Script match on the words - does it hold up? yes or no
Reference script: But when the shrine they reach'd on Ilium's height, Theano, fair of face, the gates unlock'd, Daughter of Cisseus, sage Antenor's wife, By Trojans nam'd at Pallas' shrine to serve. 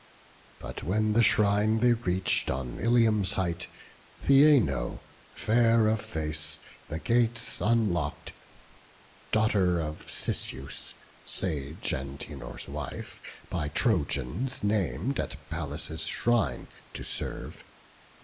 yes